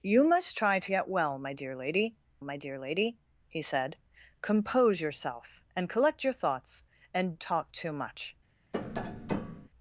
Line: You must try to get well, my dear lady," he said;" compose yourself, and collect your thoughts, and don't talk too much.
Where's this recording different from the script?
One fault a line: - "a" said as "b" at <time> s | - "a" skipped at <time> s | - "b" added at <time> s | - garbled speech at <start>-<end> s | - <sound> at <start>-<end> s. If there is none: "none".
- "my dear lady" added at 2.4 s
- "don't" skipped at 7.4 s
- tap at 8.7-9.7 s